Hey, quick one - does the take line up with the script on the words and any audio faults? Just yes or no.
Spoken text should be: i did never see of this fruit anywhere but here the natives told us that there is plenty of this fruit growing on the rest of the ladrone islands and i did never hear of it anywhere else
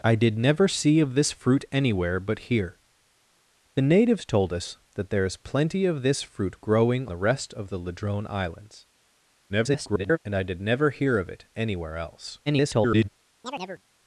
no